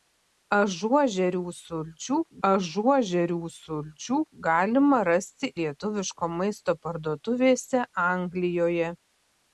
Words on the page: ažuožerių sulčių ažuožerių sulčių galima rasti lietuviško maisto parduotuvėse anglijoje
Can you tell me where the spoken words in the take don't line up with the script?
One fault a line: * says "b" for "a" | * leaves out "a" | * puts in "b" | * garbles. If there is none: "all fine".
all fine